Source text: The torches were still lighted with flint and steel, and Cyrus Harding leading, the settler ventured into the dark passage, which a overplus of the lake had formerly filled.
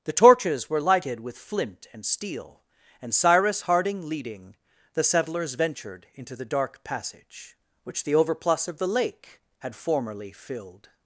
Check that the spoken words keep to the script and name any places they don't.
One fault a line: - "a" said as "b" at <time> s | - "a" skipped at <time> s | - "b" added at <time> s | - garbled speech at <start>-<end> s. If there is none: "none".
- "still" skipped at 0.8 s
- "settler" said as "settlers" at 5.0 s
- "a" said as "the" at 8.0 s